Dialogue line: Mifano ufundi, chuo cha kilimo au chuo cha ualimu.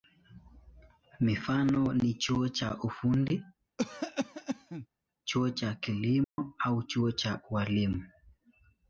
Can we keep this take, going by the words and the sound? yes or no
no